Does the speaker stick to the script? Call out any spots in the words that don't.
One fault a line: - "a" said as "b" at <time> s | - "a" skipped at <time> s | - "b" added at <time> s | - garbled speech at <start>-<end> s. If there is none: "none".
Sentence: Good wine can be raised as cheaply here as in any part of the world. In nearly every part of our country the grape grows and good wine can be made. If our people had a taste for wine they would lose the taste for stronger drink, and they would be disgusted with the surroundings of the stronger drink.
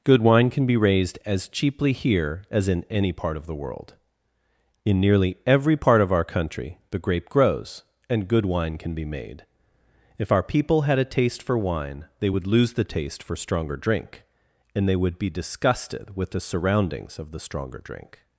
none